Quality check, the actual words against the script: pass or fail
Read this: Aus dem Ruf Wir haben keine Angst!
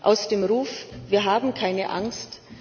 pass